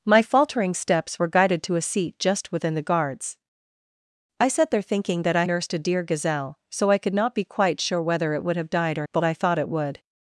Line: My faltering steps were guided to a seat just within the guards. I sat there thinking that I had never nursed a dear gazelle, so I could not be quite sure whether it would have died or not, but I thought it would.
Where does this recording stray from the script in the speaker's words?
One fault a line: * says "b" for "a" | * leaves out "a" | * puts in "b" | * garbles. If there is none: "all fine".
* leaves out "had never"
* leaves out "not"